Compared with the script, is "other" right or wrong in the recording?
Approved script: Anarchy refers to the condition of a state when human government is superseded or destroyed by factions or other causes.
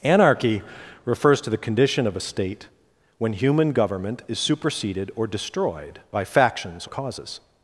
wrong